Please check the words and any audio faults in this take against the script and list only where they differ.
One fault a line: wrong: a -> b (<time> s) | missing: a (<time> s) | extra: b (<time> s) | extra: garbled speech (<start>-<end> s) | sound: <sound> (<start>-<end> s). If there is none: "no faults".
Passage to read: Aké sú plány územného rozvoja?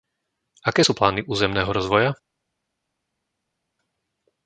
no faults